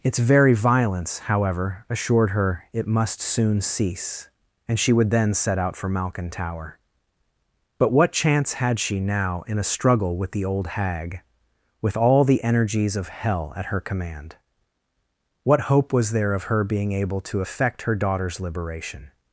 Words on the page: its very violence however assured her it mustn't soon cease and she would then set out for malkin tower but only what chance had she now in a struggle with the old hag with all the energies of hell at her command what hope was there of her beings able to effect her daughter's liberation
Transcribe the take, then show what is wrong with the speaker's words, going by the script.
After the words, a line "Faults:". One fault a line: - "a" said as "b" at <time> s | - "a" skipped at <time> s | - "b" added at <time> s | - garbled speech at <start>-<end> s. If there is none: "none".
its very violence however assured her it must soon cease and she would then set out for malkin tower but what chance had she now in a struggle with the old hag with all the energies of hell at her command what hope was there of her being able to effect her daughter's liberation
Faults:
- "mustn't" said as "must" at 2.9 s
- "only" skipped at 7.9 s
- "beings" said as "being" at 16.6 s